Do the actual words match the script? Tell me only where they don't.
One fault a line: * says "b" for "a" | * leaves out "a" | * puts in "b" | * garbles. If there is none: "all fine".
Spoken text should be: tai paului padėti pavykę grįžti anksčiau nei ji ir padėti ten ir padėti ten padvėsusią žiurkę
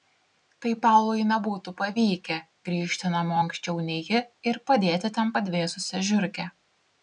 * says "nebūtų" for "padėti"
* puts in "namo"
* leaves out "ir padėti ten"